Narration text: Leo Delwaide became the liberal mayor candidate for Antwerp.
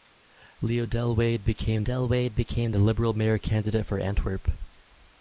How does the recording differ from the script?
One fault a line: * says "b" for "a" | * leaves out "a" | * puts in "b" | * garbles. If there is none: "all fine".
* puts in "Delwaide became"